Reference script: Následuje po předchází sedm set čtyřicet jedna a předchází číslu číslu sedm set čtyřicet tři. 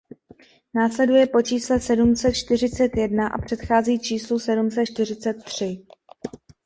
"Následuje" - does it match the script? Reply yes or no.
yes